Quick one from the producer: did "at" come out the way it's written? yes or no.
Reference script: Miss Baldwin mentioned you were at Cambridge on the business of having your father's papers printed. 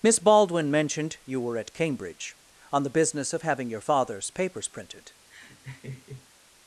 yes